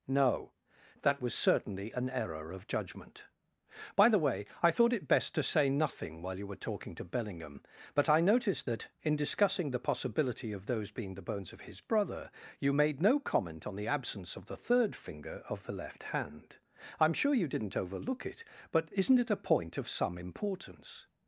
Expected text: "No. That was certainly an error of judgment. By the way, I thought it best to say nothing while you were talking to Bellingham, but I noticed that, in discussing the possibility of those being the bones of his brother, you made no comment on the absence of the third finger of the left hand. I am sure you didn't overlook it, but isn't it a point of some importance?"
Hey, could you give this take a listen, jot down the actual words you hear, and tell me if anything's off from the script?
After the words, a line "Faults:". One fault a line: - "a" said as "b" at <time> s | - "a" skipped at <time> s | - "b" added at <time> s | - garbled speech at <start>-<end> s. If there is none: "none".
"No. That was certainly an error of judgment. By the way, I thought it best to say nothing while you were talking to Bellingham, but I noticed that, in discussing the possibility of those being the bones of his brother, you made no comment on the absence of the third finger of the left hand. I am sure you didn't overlook it, but isn't it a point of some importance?"
Faults:
none